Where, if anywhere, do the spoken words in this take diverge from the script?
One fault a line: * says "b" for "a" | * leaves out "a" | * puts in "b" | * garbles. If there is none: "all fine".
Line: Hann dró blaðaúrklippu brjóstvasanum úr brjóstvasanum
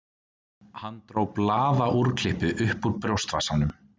* says "upp" for "brjóstvasanum"